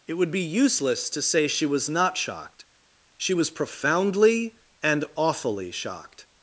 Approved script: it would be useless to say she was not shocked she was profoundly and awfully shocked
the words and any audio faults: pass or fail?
pass